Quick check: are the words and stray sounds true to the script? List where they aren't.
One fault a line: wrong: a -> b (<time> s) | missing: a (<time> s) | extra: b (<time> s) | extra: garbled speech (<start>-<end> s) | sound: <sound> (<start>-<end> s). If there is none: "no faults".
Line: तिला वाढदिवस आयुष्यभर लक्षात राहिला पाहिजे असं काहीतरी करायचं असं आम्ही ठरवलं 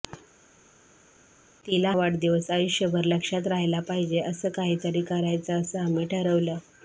no faults